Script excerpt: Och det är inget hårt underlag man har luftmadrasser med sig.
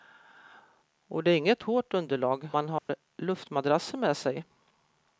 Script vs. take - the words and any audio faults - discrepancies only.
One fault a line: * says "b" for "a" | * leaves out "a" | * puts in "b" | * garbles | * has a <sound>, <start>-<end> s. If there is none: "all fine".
* has a dropout, 2.8-2.9 s